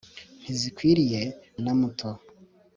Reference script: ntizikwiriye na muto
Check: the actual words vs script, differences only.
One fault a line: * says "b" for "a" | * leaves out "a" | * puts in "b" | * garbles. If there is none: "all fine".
all fine